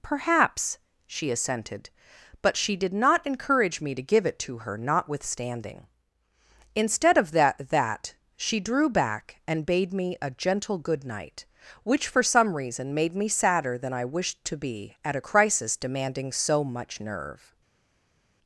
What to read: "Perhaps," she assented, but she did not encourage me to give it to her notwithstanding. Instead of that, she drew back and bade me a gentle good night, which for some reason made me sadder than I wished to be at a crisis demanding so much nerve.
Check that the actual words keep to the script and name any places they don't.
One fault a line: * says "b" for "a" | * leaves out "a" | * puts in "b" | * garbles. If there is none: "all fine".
* puts in "that"